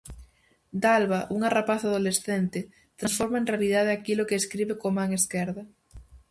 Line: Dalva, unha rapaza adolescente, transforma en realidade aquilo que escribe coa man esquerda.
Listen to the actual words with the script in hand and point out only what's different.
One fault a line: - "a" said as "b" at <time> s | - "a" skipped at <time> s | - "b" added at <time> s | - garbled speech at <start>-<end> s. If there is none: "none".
none